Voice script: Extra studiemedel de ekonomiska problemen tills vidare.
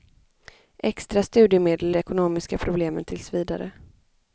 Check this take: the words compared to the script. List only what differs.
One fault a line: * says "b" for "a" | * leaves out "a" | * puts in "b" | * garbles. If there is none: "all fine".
all fine